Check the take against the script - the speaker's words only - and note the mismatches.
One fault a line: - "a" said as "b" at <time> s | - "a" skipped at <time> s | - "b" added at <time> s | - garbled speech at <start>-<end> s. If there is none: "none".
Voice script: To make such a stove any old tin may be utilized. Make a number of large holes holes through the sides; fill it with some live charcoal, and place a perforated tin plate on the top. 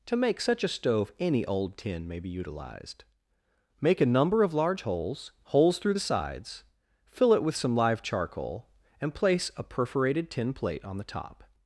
none